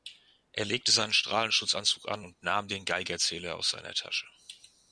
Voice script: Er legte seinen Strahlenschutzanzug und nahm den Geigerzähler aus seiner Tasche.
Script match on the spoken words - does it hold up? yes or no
no